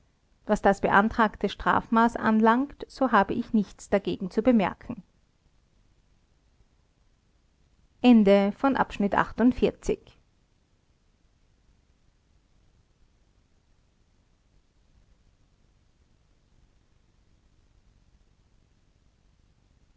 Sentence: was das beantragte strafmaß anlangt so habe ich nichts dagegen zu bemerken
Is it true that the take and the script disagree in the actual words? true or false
false